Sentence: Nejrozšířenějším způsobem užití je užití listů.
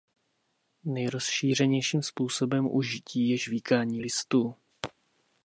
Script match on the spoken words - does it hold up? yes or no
no